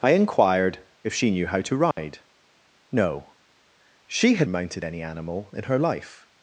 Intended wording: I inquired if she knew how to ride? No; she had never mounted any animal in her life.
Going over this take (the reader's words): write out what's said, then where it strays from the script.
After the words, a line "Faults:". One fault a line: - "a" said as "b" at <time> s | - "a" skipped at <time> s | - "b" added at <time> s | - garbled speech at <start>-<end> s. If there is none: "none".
I inquired if she knew how to ride? No; she had mounted any animal in her life.
Faults:
- "never" skipped at 4.5 s